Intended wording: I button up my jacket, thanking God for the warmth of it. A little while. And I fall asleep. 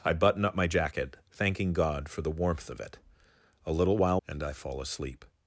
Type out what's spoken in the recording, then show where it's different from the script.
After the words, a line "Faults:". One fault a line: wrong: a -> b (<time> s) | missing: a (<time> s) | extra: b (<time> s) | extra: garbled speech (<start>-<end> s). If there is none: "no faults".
I button up my jacket, thanking God for the warmth of it. A little while. And I fall asleep.
Faults:
no faults